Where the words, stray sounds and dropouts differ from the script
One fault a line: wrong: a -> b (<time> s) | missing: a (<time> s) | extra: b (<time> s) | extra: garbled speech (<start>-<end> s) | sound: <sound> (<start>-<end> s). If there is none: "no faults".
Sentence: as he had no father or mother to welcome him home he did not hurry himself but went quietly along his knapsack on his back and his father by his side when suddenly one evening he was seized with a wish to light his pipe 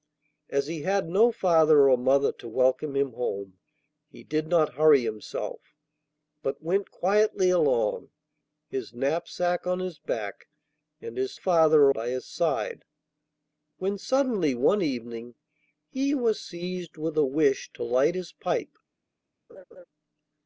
sound: laugh (19.5-19.8 s)